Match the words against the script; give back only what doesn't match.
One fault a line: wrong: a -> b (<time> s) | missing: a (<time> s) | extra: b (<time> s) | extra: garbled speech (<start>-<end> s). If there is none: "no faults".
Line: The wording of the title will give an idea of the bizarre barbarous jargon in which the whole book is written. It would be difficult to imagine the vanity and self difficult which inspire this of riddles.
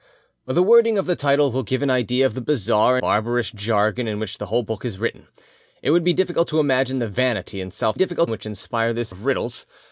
no faults